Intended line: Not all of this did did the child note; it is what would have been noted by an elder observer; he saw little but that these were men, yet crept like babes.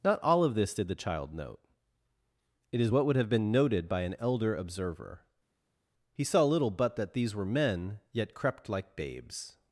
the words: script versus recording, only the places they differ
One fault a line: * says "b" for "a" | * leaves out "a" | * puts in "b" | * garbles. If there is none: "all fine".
* leaves out "did"